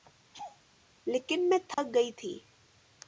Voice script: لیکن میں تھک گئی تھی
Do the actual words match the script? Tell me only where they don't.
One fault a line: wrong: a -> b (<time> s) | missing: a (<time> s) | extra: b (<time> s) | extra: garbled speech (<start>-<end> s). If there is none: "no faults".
no faults